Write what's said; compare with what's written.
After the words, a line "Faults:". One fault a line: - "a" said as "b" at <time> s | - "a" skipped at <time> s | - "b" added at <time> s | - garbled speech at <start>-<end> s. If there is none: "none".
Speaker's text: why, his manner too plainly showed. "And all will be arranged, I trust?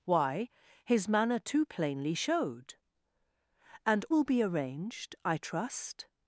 why, his manner too plainly showed. "And will be arranged, I trust?
Faults:
- "all" skipped at 4.0 s